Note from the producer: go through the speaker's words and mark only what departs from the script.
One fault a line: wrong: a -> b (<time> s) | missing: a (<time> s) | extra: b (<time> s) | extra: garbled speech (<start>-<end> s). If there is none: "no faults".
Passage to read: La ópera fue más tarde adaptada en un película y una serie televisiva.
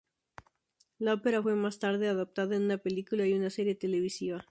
wrong: un -> una (2.6 s)